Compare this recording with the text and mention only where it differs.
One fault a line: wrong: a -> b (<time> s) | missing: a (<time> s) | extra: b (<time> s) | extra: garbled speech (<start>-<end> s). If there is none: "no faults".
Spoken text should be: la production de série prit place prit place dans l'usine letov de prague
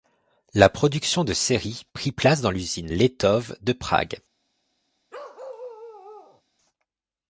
missing: prit place (2.4 s)